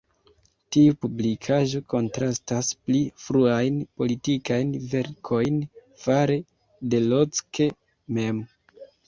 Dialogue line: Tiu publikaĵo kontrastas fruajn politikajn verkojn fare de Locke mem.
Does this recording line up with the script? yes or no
no